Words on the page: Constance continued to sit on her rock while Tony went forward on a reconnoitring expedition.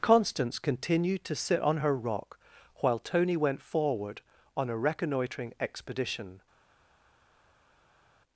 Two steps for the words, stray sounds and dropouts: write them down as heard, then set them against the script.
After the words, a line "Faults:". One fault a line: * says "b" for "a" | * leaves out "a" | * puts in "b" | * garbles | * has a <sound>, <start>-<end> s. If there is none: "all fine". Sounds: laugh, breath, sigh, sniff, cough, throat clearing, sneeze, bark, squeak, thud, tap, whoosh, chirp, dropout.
Constance continued to sit on her rock while Tony went forward on a reconnoitring expedition.
Faults:
all fine